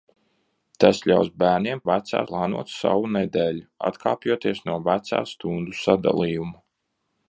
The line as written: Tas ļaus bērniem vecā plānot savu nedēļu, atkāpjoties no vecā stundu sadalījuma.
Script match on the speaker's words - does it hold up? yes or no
yes